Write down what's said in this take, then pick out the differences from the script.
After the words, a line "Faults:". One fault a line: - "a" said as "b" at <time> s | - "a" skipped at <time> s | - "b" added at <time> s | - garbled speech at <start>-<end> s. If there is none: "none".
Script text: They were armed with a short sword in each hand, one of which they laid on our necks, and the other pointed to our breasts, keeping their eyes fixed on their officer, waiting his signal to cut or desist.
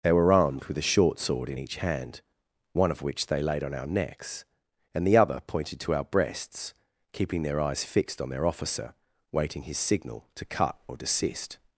They were armed with a short sword in each hand, one of which they laid on our necks, and the other pointed to our breasts, keeping their eyes fixed on their officer, waiting his signal to cut or desist.
Faults:
none